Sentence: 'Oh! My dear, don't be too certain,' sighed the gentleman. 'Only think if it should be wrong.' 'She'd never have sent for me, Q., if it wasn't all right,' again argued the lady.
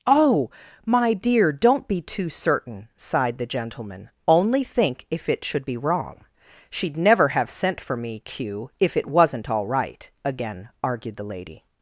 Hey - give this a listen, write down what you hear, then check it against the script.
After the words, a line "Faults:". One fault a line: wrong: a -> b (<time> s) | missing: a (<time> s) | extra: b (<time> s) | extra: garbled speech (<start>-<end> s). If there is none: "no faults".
'Oh! My dear, don't be too certain,' sighed the gentleman. 'Only think if it should be wrong.' 'She'd never have sent for me, Q., if it wasn't all right,' again argued the lady.
Faults:
no faults